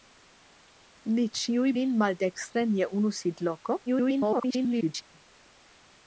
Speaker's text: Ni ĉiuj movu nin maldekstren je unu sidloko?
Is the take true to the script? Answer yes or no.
no